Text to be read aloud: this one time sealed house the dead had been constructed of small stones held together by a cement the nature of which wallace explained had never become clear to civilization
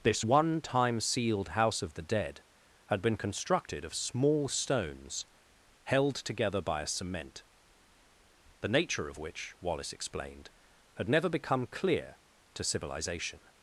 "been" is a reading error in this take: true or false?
false